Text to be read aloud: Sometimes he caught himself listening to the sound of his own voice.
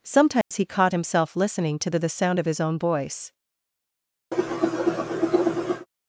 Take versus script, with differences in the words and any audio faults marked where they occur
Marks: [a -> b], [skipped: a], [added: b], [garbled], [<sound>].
Sometimes [dropout] he caught himself listening to the [added: the] sound of his own voice. [cough]